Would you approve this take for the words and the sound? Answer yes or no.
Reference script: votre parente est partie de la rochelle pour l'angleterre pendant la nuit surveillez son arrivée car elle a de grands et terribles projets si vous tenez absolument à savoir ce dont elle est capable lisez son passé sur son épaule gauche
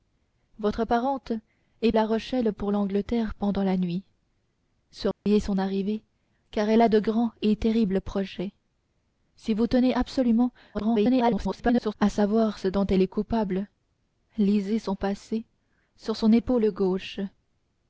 no